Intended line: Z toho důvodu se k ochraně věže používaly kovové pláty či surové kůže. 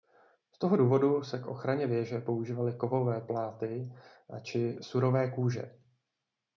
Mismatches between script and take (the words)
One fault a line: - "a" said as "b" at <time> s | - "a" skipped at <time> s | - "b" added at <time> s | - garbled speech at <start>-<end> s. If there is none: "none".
none